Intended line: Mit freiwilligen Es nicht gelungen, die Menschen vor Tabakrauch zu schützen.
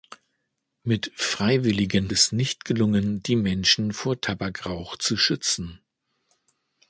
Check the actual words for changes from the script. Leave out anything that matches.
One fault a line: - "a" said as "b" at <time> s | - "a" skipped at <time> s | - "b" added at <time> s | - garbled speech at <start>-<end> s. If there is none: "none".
none